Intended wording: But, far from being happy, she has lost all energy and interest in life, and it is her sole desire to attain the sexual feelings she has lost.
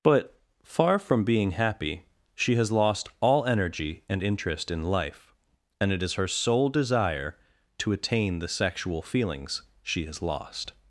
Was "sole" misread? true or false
false